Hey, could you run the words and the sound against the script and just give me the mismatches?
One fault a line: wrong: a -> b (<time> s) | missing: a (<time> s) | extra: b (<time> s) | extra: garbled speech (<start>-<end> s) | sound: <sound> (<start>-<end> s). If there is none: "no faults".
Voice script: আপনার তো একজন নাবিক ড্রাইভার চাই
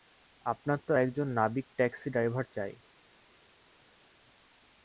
extra: ট্যাক্সি (1.8 s)